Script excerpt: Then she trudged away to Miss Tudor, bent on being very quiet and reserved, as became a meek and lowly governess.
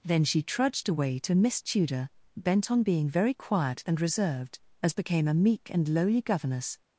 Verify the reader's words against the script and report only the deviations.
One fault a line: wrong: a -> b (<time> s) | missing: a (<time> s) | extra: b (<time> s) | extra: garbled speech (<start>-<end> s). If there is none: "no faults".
no faults